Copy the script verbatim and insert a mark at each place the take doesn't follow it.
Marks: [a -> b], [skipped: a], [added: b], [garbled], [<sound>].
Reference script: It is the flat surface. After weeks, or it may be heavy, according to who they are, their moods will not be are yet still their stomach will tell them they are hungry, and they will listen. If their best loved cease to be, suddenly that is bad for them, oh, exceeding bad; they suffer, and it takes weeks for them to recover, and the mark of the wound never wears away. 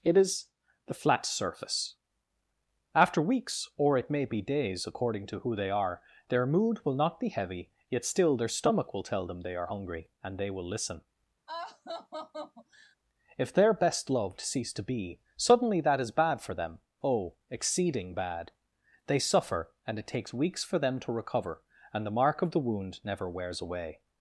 It is the flat surface. After weeks, or it may be [heavy, -> days] according to who they are, their [moods -> mood] will not be [are -> heavy] yet still their stomach will tell them they are hungry, and they will listen. [laugh] If their best loved cease to be, suddenly that is bad for them, oh, exceeding bad; they suffer, and it takes weeks for them to recover, and the mark of the wound never wears away.